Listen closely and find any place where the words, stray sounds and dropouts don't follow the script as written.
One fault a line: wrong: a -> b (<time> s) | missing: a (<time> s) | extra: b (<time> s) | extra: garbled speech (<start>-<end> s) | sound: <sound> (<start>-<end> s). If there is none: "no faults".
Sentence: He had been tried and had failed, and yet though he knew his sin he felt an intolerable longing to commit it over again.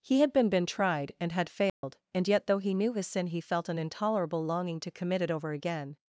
extra: been (0.5 s)
sound: dropout (1.7-1.8 s)